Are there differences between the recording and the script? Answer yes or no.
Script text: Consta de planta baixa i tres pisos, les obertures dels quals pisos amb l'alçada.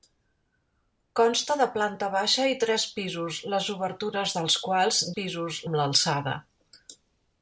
no